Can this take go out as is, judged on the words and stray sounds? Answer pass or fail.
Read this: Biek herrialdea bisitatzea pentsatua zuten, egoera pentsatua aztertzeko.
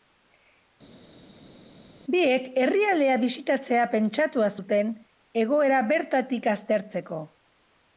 fail